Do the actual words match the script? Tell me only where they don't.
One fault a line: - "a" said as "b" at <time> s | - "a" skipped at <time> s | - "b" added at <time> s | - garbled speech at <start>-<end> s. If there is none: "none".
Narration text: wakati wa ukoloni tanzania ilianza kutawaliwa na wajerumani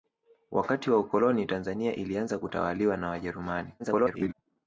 - garbled speech at 3.8-4.3 s